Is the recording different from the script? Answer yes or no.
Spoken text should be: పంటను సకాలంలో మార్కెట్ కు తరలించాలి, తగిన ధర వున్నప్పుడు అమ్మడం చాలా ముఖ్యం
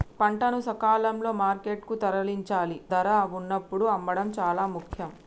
yes